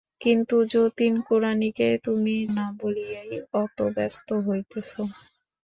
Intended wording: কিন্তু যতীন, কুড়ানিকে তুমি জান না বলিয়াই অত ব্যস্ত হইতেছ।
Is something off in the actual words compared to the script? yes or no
yes